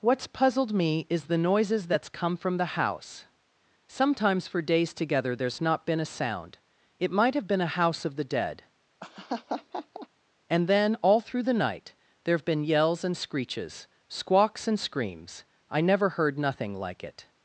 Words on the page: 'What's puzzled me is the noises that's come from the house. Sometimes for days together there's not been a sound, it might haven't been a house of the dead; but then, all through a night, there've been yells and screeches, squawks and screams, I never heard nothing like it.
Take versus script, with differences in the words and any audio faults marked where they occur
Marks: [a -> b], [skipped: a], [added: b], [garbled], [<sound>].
'What's puzzled me is the noises that's come from the house. Sometimes for days together there's not been a sound, it might [haven't -> have] been a house of the dead; [laugh] [but -> and] then, all through [a -> the] night, there've been yells and screeches, squawks and screams, I never heard nothing like it.